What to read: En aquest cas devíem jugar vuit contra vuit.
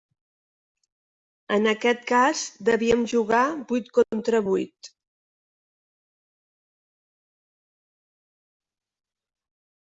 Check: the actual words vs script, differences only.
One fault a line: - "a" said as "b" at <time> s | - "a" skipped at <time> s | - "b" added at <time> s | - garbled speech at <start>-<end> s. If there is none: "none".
none